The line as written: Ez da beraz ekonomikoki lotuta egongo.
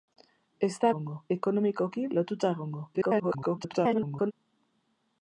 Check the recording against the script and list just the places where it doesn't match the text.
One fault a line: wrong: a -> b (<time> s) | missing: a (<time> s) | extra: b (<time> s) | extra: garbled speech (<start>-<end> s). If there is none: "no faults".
wrong: beraz -> egongo (0.9 s)
extra: garbled speech (2.9-4.3 s)